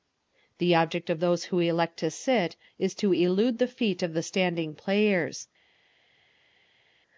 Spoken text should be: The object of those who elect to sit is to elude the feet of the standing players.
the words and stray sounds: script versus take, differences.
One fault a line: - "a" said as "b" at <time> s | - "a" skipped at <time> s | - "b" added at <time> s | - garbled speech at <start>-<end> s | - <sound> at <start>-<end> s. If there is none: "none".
none